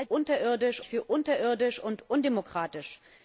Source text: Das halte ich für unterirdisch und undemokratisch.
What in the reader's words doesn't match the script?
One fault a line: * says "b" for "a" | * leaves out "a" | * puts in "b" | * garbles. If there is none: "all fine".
* says "unterirdisch" for "halte"